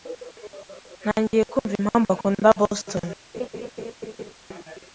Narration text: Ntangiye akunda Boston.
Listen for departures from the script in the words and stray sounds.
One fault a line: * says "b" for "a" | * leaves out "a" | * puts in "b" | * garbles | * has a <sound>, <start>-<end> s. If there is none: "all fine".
* puts in "kumva impamvu"
* has a laugh, 3.3-4.3 s